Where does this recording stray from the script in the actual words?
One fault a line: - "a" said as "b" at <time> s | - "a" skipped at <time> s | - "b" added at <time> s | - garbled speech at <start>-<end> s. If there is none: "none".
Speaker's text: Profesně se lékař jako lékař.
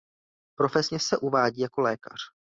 - "lékař" said as "uvádí" at 1.2 s